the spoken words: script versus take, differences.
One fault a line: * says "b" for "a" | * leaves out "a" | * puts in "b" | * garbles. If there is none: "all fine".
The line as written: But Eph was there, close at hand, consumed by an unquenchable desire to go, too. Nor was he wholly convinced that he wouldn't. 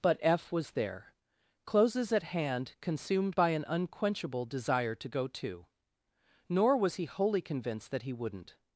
* says "closes" for "close"